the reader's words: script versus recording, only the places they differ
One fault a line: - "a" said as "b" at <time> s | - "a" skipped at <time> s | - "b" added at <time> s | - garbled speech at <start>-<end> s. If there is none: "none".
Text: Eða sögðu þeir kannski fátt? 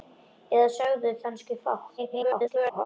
- "þeir" skipped at 1.1 s
- garbled speech at 2.0-2.9 s